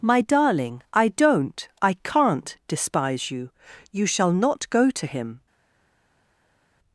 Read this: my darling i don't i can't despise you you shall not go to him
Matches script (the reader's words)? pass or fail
pass